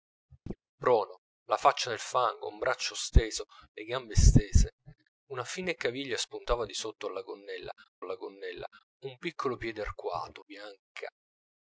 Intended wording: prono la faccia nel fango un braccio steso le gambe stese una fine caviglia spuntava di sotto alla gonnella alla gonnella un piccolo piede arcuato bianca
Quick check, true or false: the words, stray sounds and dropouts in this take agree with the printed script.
false